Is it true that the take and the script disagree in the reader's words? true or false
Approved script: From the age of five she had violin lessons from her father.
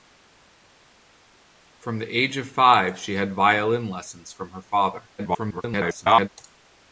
true